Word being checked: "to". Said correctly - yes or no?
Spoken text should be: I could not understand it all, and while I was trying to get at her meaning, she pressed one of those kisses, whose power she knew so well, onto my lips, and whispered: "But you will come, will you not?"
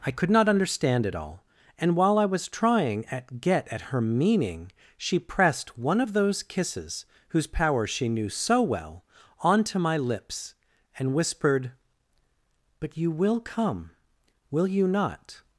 no